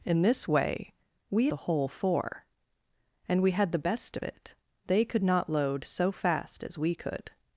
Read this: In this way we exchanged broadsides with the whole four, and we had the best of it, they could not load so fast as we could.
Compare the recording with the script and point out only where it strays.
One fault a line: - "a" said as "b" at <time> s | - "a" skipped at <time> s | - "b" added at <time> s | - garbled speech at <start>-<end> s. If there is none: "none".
- "exchanged broadsides with" skipped at 1.5 s